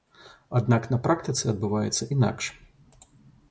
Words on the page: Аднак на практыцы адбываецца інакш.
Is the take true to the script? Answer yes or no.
yes